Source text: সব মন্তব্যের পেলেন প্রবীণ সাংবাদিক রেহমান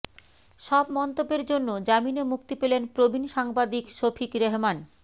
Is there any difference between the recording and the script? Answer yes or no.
yes